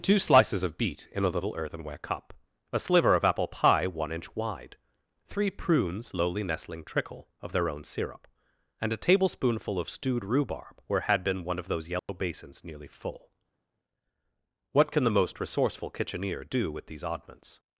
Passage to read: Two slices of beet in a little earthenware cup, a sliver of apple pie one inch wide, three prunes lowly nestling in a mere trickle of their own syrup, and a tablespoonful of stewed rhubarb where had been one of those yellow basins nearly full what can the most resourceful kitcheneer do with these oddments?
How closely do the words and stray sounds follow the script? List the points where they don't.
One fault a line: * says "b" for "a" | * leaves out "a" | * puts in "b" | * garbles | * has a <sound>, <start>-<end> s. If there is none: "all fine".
* leaves out "in a mere"
* has a dropout, 12.0-12.1 s